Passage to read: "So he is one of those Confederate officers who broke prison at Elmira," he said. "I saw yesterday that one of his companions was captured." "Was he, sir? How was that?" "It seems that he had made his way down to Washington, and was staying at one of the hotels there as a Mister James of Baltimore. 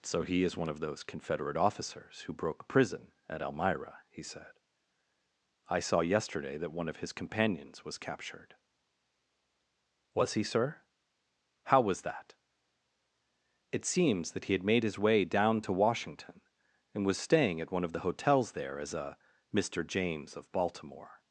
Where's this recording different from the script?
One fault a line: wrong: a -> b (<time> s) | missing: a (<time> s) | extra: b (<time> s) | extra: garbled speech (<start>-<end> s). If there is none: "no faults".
no faults